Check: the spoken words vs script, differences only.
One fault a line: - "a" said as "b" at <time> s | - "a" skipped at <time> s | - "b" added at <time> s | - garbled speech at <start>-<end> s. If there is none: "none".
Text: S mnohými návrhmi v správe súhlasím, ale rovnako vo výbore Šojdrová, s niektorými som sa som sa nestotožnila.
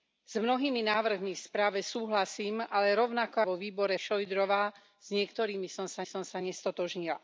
none